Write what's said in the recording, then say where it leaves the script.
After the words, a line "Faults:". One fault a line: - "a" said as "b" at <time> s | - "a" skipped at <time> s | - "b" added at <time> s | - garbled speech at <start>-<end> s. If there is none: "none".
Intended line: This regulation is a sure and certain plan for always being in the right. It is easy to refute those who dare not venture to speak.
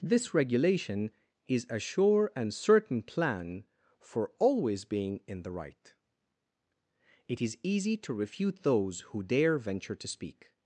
This regulation is a sure and certain plan for always being in the right. It is easy to refute those who dare venture to speak.
Faults:
- "not" skipped at 9.6 s